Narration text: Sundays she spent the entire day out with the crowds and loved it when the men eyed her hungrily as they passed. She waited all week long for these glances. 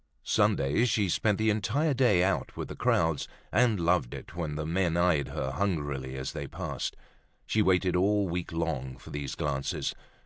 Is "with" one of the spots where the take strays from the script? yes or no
no